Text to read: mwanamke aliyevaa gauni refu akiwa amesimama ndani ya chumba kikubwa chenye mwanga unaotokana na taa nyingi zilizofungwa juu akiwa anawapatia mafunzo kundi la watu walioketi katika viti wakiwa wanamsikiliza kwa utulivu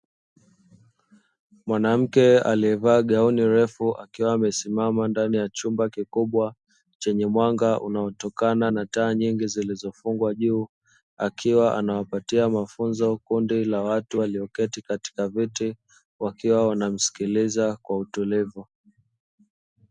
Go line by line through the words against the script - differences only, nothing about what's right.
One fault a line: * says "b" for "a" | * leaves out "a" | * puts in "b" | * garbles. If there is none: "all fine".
all fine